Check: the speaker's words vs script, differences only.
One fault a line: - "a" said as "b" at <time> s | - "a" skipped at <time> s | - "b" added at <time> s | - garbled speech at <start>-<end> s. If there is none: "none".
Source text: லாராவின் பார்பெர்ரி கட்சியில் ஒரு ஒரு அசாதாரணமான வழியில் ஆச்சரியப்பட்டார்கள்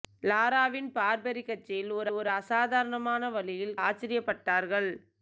none